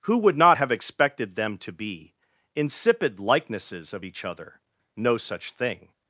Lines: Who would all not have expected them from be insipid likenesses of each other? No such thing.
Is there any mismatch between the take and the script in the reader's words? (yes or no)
yes